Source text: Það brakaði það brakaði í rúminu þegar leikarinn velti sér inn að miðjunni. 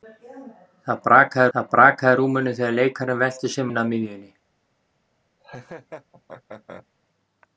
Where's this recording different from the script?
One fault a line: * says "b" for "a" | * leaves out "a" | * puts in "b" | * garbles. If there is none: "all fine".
all fine